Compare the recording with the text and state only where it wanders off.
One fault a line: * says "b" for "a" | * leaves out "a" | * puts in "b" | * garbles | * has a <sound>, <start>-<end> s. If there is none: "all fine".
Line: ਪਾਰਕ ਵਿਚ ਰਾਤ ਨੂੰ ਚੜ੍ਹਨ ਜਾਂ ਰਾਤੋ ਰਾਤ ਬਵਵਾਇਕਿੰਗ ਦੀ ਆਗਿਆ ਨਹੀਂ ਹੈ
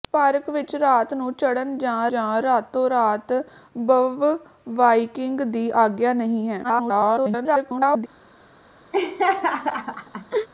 * puts in "ਜਾਂ"
* garbles
* has a laugh, 8.9-10.5 s